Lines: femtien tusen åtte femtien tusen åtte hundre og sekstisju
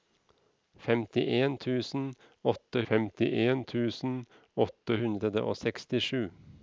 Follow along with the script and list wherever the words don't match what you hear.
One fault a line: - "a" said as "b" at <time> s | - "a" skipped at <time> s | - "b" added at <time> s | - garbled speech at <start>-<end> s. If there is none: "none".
none